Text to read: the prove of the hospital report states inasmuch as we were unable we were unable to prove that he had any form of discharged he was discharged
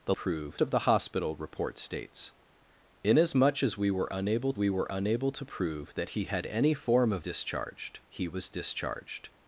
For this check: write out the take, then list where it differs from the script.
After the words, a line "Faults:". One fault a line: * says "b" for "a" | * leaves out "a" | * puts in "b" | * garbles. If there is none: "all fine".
the prove of the hospital report states inasmuch as we were unable we were unable to prove that he had any form of discharged he was discharged
Faults:
all fine